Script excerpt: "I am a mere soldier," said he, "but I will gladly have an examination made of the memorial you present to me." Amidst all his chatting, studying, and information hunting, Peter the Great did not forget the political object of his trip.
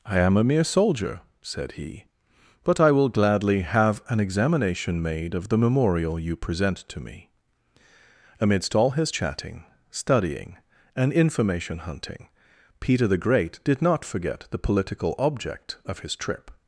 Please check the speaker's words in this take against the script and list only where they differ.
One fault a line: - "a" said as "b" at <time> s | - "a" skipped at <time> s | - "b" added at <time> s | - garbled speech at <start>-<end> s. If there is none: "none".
none